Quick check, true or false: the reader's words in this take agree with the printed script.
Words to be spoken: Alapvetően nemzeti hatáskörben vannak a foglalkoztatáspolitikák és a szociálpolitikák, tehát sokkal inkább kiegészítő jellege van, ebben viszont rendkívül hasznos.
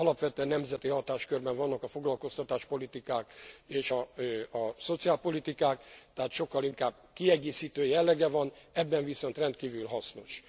true